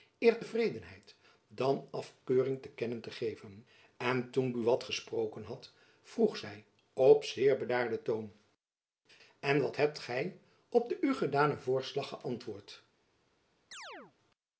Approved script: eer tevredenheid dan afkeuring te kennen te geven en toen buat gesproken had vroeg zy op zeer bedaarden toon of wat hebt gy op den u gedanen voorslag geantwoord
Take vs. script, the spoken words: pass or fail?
fail